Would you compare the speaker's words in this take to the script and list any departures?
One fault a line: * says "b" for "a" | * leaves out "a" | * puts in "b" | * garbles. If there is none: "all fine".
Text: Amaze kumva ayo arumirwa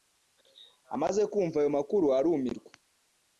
* puts in "makuru"